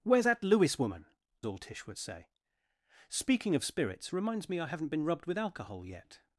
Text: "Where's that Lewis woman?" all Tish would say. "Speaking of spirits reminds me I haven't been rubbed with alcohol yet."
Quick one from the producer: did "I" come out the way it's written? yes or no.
yes